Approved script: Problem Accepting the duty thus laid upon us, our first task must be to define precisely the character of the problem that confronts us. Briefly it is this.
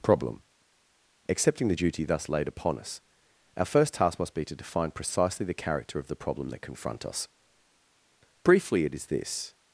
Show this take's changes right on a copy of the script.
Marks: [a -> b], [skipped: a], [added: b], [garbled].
Problem Accepting the duty thus laid upon us, our first task must be to define precisely the character of the problem that [confronts -> confront] us. Briefly it is this.